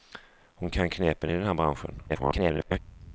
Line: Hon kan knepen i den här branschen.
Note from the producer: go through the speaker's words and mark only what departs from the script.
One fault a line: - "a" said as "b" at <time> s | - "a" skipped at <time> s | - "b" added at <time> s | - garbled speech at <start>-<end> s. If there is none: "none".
- garbled speech at 2.1-2.8 s